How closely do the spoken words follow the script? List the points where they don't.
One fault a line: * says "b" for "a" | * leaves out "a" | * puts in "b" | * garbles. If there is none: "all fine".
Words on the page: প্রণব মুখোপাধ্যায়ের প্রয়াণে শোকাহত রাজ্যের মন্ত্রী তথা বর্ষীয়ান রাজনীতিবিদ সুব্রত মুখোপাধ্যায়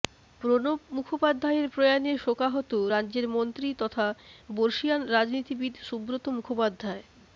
all fine